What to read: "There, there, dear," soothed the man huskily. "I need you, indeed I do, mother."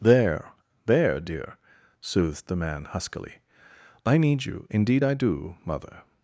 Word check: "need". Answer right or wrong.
right